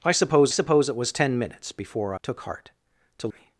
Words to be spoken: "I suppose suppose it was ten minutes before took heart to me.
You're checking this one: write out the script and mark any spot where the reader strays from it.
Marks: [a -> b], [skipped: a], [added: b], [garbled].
"I suppose suppose it was ten minutes before took heart to me.